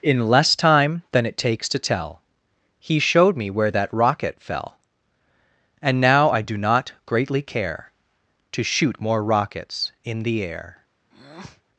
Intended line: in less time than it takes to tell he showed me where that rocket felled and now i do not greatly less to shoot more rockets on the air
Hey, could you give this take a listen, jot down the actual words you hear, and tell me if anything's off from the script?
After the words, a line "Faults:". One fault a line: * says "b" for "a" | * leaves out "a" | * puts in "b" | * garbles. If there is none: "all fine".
in less time than it takes to tell he showed me where that rocket fell and now i do not greatly care to shoot more rockets in the air
Faults:
* says "fell" for "felled"
* says "care" for "less"
* says "in" for "on"